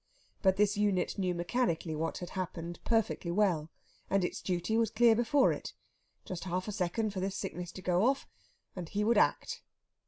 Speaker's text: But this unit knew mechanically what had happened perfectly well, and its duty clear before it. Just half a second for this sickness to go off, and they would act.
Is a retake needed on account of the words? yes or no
yes